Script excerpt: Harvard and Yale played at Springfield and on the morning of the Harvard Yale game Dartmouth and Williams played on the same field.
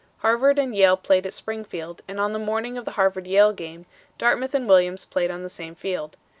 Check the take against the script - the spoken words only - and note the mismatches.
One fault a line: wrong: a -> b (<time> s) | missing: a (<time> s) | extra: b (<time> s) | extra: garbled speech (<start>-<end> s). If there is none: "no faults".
no faults